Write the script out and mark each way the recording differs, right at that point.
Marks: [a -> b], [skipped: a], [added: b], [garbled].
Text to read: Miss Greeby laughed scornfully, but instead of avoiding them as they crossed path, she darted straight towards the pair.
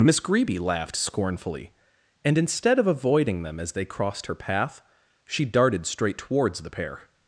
Miss Greeby laughed scornfully, [but -> and] instead of avoiding them as they crossed [added: her] path, she darted straight towards the pair.